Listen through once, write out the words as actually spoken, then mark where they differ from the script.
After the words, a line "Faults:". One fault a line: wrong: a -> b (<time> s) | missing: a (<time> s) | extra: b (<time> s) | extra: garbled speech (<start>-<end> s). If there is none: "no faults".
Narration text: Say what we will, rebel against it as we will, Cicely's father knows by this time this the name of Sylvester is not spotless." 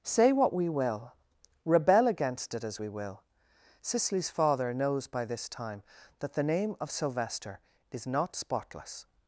Say what we will, rebel against it as we will, Cicely's father knows by this time that the name of Sylvester is not spotless."
Faults:
wrong: this -> that (6.2 s)